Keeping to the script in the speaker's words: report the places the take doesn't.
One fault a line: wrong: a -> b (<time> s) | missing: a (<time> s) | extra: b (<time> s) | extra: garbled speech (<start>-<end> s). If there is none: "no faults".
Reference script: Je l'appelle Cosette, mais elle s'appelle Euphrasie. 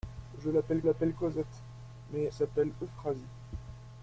extra: l'appelle (0.8 s)
missing: elle (2.3 s)